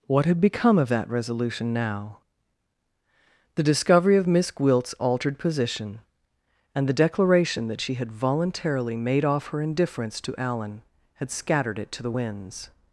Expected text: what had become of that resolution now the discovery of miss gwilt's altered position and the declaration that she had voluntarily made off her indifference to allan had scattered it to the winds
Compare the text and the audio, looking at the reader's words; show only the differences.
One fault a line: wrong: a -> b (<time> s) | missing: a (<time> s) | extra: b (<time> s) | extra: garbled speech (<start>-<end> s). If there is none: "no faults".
no faults